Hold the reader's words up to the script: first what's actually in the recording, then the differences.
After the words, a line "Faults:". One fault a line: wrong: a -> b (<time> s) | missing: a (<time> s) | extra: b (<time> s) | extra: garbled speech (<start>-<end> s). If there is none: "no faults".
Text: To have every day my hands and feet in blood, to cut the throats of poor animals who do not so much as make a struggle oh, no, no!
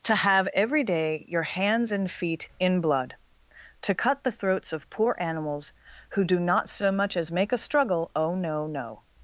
To have every day your hands and feet in blood, to cut the throats of poor animals who do not so much as make a struggle oh, no, no!
Faults:
wrong: my -> your (1.3 s)